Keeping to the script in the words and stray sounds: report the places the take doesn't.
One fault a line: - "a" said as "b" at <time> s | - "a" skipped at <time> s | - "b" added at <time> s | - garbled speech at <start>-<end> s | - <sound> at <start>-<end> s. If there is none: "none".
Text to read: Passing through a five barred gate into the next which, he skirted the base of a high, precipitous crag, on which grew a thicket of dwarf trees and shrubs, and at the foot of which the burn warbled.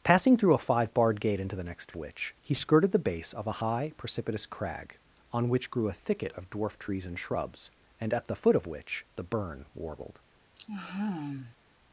- sigh at 10.6-11.6 s